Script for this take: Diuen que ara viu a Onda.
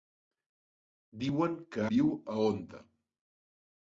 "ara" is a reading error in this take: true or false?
true